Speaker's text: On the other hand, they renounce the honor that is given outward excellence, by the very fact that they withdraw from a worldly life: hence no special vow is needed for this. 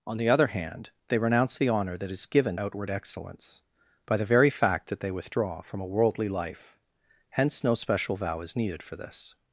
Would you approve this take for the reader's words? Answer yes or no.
yes